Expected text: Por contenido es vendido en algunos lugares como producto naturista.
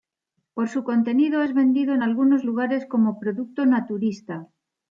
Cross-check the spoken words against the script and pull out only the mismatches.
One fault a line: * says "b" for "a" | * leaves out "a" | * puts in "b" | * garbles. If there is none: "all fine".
* puts in "su"